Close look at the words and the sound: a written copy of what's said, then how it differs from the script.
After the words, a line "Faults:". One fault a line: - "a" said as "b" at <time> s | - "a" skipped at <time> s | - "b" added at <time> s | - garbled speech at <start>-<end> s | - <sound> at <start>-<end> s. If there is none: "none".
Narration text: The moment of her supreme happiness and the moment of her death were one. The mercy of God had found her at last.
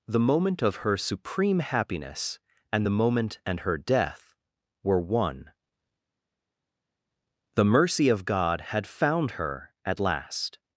The moment of her supreme happiness and the moment and her death were one. The mercy of God had found her at last.
Faults:
- "of" said as "and" at 3.5 s